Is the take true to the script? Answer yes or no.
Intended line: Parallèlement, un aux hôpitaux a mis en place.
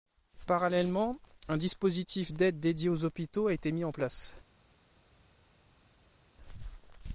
no